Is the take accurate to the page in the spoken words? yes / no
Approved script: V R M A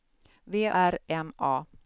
yes